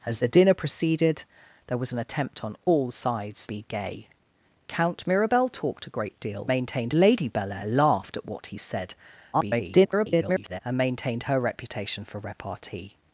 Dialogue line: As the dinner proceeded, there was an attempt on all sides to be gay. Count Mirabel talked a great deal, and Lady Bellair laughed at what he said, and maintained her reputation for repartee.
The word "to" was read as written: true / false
false